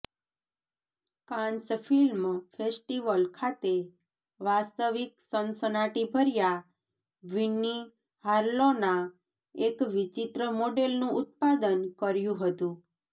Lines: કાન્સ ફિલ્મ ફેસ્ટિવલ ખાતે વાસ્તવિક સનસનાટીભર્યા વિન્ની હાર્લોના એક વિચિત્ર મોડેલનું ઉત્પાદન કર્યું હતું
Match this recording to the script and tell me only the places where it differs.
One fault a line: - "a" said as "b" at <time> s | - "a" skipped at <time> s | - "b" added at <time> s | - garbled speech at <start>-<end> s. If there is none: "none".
none